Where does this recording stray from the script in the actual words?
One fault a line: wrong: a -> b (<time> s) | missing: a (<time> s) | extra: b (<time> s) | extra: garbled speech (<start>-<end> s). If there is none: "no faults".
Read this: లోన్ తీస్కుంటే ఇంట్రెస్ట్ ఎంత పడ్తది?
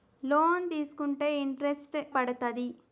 missing: ఎంత (2.0 s)